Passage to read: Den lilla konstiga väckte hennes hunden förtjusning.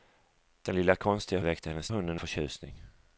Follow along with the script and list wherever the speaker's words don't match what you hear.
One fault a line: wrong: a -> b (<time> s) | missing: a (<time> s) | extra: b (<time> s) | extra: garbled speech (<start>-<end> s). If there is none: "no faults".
no faults